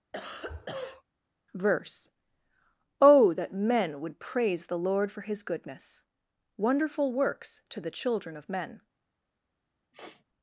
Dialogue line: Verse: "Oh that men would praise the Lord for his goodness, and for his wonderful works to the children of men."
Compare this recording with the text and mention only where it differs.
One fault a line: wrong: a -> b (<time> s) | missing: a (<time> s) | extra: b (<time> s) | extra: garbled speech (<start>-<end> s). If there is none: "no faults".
missing: and for his (6.0 s)